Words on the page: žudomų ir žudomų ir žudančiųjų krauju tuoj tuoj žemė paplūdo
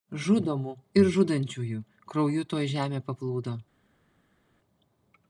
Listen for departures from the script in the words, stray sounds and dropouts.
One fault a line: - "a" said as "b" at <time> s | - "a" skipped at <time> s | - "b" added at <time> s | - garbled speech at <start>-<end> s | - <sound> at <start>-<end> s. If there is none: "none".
- "žudomų ir" skipped at 1.1 s
- "tuoj" skipped at 2.7 s